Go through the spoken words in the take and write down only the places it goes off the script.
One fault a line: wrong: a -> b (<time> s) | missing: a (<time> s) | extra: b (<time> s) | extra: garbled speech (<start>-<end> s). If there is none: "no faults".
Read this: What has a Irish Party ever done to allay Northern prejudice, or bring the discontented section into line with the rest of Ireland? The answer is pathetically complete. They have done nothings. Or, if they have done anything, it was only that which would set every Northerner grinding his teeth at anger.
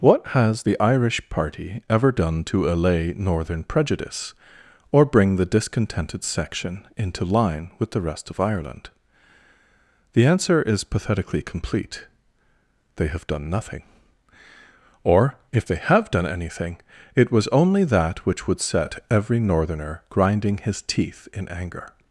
wrong: a -> the (0.6 s)
wrong: nothings -> nothing (13.5 s)
wrong: at -> in (21.3 s)